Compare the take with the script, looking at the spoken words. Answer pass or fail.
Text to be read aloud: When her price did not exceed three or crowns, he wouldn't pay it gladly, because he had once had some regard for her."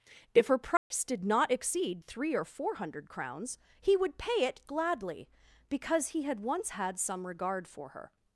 fail